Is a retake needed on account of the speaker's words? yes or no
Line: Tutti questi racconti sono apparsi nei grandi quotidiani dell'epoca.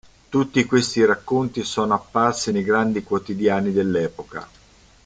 no